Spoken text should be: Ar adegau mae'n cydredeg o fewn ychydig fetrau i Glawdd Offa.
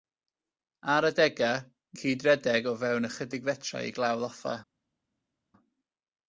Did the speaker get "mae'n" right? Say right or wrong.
wrong